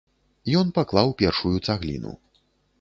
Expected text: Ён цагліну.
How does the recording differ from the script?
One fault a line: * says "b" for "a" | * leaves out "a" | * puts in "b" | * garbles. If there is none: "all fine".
* puts in "паклаў першую"